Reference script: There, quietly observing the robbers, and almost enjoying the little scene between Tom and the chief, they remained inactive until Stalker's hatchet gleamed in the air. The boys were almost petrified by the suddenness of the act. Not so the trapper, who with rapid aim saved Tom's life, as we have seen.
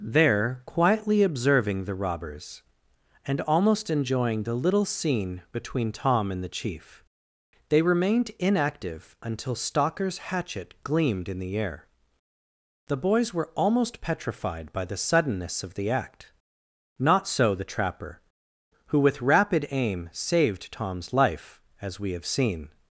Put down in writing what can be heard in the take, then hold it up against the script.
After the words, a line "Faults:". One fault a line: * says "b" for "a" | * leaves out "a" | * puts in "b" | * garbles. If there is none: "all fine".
There, quietly observing the robbers, and almost enjoying the little scene between Tom and the chief, they remained inactive until Stalker's hatchet gleamed in the air. The boys were almost petrified by the suddenness of the act. Not so the trapper, who with rapid aim saved Tom's life, as we have seen.
Faults:
all fine